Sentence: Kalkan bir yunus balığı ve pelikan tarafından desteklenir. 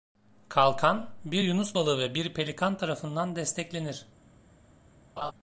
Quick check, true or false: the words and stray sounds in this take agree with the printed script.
false